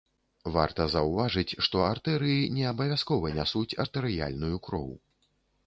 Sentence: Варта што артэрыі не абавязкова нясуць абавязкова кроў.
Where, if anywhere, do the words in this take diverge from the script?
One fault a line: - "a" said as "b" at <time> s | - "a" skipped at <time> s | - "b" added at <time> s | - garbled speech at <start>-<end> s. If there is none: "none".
- "заўважыць" added at 0.9 s
- "абавязкова" said as "артэрыяльную" at 3.8 s